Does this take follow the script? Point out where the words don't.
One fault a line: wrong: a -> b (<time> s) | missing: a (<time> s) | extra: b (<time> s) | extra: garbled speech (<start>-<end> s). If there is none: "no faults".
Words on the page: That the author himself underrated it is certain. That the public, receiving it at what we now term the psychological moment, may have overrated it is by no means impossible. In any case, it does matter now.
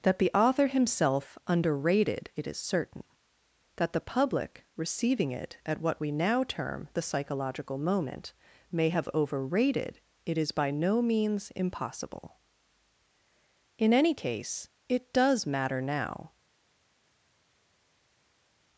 no faults